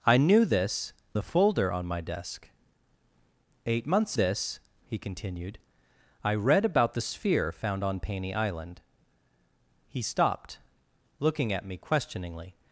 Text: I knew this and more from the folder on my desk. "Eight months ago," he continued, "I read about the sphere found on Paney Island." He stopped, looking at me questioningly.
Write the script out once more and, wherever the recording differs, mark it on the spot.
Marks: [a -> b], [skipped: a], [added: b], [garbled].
I knew this [skipped: and more from] the folder on my desk. "Eight months [ago," -> this] he continued, "I read about the sphere found on Paney Island." He stopped, looking at me questioningly.